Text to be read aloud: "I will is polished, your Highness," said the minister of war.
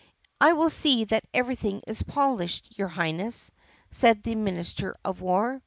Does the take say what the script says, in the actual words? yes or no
no